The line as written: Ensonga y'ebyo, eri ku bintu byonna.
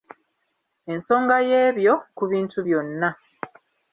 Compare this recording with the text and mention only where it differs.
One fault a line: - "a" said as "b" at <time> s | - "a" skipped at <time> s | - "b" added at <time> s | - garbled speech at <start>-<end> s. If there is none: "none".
- "eri" skipped at 1.9 s